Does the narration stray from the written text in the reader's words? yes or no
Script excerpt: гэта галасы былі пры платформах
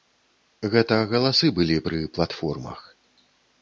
no